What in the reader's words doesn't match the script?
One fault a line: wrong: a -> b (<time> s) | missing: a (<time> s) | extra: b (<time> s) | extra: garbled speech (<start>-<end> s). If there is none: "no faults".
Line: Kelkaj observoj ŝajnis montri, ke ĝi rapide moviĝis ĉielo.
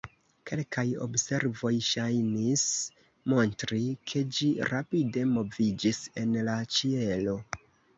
extra: en la (6.3 s)